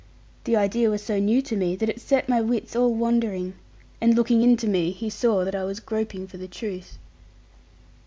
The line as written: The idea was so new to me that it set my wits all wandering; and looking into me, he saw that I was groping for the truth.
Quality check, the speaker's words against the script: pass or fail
pass